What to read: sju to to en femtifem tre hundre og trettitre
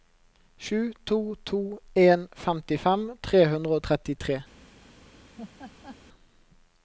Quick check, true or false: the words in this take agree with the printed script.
true